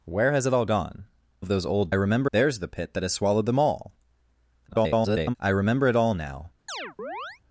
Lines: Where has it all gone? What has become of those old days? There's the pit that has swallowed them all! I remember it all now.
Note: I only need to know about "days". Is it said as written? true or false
false